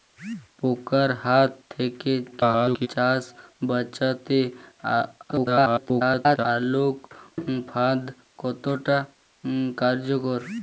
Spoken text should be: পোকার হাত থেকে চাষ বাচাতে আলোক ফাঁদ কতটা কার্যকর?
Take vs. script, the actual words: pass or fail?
fail